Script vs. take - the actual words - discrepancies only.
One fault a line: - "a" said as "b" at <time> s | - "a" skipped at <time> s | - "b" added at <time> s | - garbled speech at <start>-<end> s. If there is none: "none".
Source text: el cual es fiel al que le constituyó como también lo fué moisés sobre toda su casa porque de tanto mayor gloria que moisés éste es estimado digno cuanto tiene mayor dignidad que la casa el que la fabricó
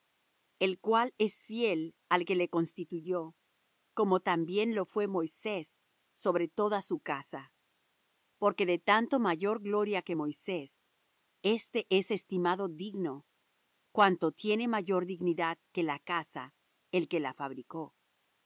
none